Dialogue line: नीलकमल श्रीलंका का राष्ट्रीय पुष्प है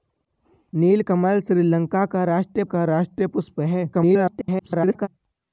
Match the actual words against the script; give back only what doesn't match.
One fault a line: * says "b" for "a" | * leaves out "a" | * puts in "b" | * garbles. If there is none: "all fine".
* puts in "का राष्ट्रीय"
* garbles